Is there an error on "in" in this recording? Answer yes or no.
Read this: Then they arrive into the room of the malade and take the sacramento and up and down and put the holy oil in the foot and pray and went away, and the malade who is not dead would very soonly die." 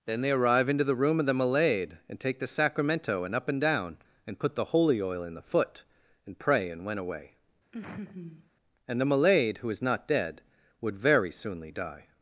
no